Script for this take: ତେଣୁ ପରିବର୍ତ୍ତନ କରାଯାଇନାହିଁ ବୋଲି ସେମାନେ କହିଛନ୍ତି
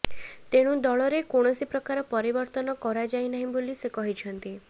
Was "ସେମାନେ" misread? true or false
true